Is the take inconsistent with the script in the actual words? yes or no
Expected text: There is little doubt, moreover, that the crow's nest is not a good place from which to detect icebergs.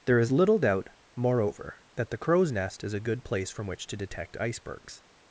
yes